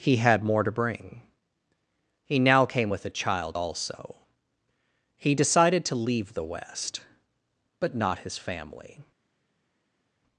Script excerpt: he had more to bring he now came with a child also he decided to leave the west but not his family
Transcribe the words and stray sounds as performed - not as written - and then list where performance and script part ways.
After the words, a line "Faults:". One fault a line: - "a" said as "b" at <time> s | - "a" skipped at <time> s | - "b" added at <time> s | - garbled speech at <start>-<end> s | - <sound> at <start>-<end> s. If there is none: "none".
he had more to bring he now came with a child also he decided to leave the west but not his family
Faults:
none